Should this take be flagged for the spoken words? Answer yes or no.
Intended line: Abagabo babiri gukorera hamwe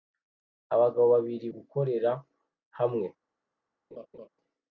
no